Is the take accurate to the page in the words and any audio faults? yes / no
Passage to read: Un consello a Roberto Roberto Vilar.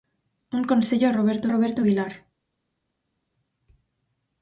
yes